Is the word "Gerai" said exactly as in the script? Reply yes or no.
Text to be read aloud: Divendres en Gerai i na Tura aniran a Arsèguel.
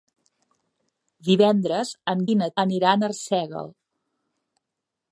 no